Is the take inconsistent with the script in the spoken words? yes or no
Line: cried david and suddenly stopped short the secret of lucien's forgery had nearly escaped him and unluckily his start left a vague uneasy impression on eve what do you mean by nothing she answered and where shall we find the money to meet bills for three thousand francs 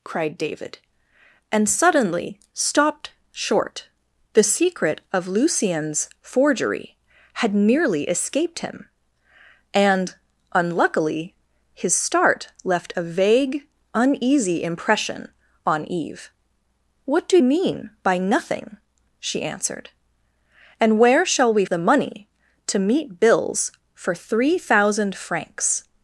yes